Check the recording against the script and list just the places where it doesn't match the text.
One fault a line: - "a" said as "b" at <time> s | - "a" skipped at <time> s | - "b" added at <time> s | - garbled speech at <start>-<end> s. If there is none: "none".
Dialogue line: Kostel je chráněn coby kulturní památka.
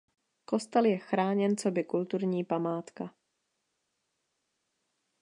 none